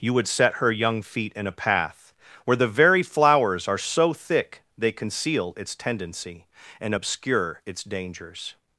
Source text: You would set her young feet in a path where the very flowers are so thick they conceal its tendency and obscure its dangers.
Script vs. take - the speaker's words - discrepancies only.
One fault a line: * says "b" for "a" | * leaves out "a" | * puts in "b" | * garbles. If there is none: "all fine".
all fine